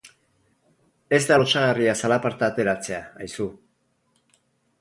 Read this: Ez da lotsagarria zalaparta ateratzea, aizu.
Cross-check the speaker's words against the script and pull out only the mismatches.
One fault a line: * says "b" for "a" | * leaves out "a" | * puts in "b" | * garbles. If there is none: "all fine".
all fine